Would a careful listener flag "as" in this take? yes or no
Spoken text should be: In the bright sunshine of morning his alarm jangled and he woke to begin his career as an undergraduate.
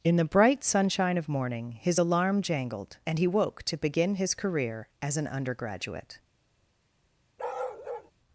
no